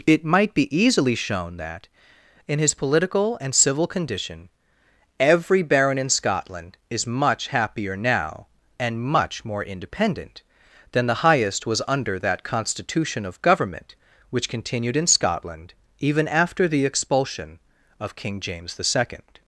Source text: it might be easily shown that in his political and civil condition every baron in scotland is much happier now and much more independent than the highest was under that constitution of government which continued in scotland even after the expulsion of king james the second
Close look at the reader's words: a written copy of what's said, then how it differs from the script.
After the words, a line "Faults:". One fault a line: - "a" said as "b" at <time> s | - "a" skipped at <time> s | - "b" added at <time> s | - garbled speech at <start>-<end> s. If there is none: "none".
it might be easily shown that in his political and civil condition every baron in scotland is much happier now and much more independent than the highest was under that constitution of government which continued in scotland even after the expulsion of king james the second
Faults:
none